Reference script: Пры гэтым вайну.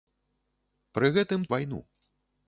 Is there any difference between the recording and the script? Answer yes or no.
no